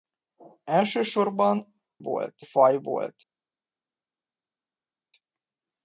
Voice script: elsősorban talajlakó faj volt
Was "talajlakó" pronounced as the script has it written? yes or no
no